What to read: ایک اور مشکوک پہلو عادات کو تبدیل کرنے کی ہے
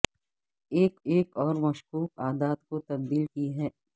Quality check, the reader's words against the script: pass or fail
fail